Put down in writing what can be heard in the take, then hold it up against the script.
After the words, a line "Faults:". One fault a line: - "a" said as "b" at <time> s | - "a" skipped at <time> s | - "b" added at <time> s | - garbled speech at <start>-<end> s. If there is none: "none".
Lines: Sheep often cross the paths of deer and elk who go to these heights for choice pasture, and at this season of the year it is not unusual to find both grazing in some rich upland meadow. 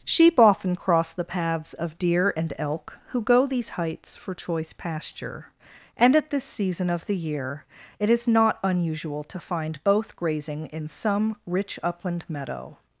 Sheep often cross the paths of deer and elk who go these heights for choice pasture, and at this season of the year it is not unusual to find both grazing in some rich upland meadow.
Faults:
- "to" skipped at 3.5 s